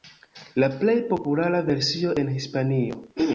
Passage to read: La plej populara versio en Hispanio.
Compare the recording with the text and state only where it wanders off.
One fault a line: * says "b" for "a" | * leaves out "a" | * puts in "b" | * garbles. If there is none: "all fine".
all fine